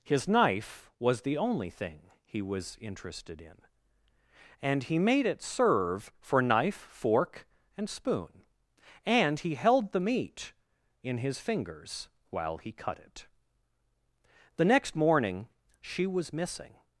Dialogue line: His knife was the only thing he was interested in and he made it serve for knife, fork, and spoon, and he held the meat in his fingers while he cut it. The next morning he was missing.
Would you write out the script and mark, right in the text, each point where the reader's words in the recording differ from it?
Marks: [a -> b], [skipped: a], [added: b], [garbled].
His knife was the only thing he was interested in and he made it serve for knife, fork, and spoon, and he held the meat in his fingers while he cut it. The next morning [he -> she] was missing.